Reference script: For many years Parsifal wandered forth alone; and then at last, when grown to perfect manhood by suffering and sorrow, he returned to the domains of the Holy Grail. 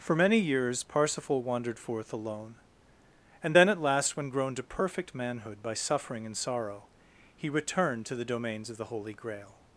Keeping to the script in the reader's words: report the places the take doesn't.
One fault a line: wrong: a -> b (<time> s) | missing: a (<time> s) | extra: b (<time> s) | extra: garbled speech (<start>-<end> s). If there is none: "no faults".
no faults